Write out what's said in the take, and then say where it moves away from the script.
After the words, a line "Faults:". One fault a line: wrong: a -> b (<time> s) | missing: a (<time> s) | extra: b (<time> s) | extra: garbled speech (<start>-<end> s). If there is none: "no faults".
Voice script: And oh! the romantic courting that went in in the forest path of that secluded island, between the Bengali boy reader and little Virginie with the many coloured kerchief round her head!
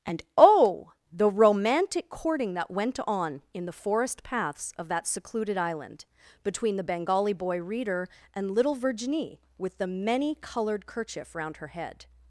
And oh! the romantic courting that went on in the forest paths of that secluded island, between the Bengali boy reader and little Virginie with the many coloured kerchief round her head!
Faults:
wrong: in -> on (3.0 s)
wrong: path -> paths (4.2 s)